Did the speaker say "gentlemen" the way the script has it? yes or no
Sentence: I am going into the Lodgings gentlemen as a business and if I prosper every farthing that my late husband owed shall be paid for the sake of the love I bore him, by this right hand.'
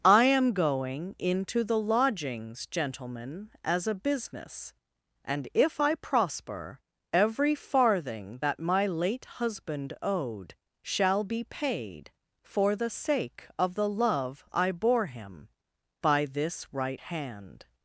yes